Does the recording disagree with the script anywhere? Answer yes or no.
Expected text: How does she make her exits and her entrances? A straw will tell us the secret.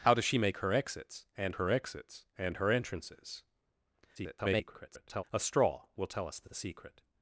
yes